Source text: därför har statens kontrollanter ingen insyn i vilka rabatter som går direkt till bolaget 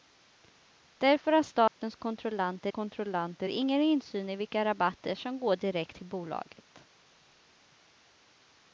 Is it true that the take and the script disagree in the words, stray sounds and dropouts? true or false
true